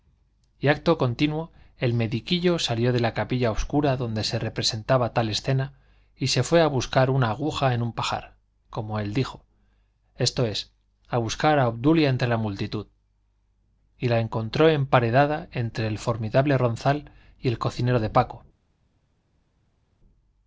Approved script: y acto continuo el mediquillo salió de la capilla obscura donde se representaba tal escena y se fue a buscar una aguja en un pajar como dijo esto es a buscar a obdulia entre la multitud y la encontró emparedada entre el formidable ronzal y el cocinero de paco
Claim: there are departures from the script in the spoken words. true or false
true